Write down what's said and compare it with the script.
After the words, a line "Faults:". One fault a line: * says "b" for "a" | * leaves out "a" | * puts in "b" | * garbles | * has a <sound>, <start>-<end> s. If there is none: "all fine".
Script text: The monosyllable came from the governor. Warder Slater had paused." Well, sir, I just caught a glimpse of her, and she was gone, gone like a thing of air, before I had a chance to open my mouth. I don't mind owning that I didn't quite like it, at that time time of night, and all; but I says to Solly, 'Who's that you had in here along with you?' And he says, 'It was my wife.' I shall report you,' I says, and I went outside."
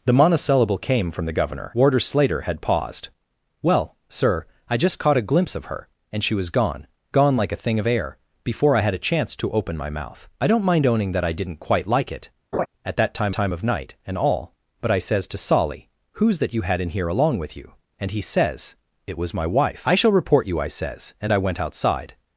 The monosyllable came from the governor. Warder Slater had paused." Well, sir, I just caught a glimpse of her, and she was gone, gone like a thing of air, before I had a chance to open my mouth. I don't mind owning that I didn't quite like it, at that time time of night, and all; but I says to Solly, 'Who's that you had in here along with you?' And he says, 'It was my wife.' I shall report you,' I says, and I went outside."
Faults:
* has a laugh, 12.5-12.7 s